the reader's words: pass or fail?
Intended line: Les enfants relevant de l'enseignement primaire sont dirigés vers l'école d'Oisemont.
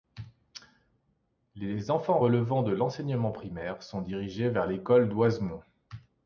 pass